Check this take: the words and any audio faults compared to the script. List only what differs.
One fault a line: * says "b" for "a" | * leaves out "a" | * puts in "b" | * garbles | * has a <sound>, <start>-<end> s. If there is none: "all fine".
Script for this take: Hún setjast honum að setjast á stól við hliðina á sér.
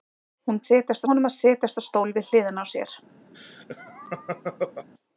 * has a laugh, 3.3-4.9 s